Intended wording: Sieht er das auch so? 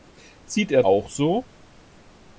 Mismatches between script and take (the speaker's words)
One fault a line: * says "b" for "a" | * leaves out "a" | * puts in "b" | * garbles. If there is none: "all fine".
* leaves out "das"